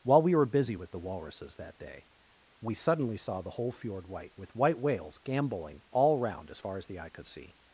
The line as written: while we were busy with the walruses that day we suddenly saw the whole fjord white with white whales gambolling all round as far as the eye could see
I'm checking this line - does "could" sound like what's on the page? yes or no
yes